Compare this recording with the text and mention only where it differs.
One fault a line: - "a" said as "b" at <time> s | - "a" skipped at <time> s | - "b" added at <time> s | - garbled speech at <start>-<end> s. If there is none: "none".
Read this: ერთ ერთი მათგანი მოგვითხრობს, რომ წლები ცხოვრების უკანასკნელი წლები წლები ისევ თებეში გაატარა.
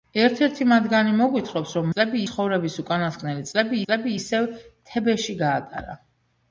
none